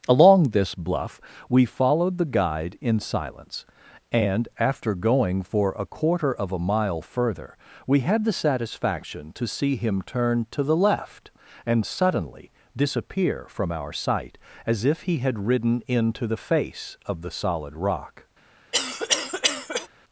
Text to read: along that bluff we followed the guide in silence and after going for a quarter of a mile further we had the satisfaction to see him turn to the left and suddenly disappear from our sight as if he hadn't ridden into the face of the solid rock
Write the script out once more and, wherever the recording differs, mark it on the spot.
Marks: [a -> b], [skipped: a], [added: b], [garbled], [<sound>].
along [that -> this] bluff we followed the guide in silence and after going for a quarter of a mile further we had the satisfaction to see him turn to the left and suddenly disappear from our sight as if he [hadn't -> had] ridden into the face of the solid rock [cough]